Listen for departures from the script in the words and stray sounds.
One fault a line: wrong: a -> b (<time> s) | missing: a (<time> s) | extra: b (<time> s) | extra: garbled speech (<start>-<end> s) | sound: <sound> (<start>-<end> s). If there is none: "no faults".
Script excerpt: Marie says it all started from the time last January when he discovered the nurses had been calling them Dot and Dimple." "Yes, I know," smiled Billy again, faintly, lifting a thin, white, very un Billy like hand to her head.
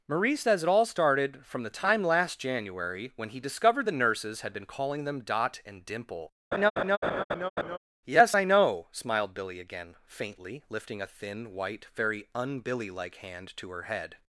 sound: laugh (6.5-7.8 s)